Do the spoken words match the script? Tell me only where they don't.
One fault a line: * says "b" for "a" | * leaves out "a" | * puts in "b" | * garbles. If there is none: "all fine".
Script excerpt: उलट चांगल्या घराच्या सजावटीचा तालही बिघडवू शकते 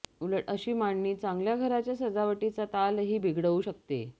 * puts in "अशी मांडणी"